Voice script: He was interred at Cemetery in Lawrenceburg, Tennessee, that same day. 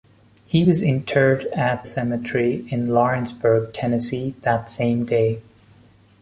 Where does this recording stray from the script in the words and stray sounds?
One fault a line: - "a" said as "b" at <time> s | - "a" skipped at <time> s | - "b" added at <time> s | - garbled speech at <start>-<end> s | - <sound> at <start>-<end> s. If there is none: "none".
none